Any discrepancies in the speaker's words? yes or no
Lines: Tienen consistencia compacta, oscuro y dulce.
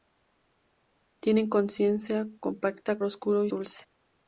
no